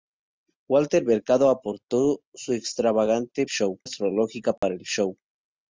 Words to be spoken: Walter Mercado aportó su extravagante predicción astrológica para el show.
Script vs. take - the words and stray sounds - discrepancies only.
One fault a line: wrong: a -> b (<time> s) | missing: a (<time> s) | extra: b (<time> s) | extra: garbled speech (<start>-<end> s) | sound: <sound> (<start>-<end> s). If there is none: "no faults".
wrong: predicción -> show (3.4 s)
sound: dropout (4.6-4.6 s)